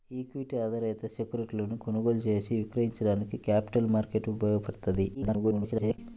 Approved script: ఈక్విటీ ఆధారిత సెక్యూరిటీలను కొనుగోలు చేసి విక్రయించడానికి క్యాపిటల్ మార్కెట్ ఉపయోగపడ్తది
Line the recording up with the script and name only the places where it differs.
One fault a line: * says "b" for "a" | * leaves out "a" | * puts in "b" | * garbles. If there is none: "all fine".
* garbles